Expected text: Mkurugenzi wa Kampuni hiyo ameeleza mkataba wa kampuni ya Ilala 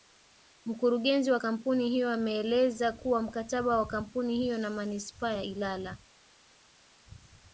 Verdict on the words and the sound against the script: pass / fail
fail